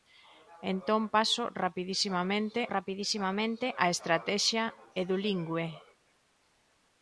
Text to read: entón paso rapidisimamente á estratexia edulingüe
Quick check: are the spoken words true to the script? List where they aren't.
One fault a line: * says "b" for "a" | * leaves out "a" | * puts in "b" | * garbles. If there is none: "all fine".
* puts in "rapidisimamente"